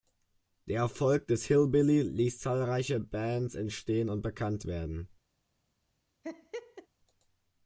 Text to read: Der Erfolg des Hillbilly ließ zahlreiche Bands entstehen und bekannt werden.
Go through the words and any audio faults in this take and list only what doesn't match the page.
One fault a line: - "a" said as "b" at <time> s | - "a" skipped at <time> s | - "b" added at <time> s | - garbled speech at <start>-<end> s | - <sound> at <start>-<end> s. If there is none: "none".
- laugh at 6.2-6.9 s